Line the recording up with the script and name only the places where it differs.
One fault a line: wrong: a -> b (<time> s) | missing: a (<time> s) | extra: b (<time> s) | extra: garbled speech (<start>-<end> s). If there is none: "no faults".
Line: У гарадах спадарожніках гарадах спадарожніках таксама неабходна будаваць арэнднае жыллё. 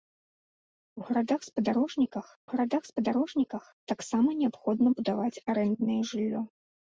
no faults